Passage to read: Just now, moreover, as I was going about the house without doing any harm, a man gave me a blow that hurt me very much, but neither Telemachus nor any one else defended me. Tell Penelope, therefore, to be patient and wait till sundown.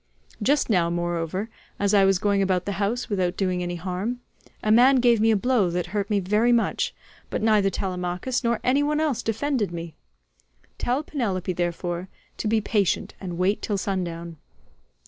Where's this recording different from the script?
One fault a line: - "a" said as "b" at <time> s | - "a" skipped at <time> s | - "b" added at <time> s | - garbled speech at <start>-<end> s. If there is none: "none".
none